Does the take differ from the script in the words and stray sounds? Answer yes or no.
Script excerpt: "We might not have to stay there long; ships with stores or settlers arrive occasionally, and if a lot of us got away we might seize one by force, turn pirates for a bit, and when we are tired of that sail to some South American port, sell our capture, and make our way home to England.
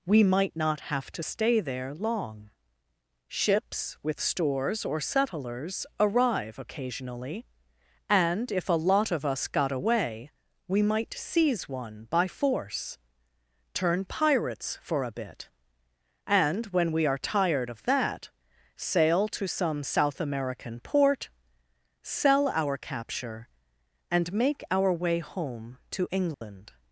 yes